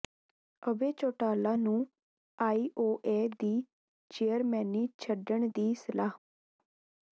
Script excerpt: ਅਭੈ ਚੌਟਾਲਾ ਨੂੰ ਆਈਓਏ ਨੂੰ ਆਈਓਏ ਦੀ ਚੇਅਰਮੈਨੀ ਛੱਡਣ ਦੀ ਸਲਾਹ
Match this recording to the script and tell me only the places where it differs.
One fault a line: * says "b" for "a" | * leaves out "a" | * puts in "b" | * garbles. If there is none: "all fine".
* leaves out "ਨੂੰ ਆਈਓਏ"